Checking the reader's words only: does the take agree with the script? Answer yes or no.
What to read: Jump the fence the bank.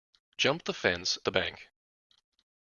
yes